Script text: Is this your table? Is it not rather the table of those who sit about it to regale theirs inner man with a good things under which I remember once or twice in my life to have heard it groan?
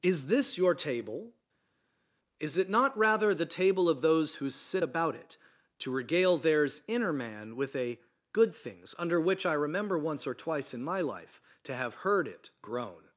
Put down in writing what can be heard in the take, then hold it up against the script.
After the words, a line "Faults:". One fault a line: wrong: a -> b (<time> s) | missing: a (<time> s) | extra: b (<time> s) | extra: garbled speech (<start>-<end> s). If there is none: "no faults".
Is this your table? Is it not rather the table of those who sit about it to regale theirs inner man with a good things under which I remember once or twice in my life to have heard it groan?
Faults:
no faults